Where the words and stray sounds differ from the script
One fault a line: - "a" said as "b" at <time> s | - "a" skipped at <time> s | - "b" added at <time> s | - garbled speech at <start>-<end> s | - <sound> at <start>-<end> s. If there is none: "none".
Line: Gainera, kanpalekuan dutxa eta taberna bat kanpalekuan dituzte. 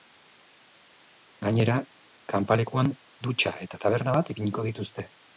- "kanpalekuan" said as "ipiniko" at 4.4 s